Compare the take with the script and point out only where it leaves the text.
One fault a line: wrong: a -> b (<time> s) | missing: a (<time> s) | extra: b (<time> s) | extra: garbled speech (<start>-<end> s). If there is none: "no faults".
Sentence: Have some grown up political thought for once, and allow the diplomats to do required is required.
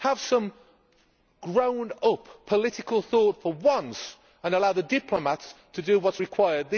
wrong: required -> what (6.0 s)